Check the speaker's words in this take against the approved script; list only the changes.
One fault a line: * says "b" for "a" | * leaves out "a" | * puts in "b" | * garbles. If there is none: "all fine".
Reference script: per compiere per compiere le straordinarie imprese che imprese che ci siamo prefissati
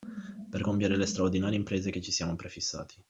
* leaves out "per compiere"
* leaves out "imprese che"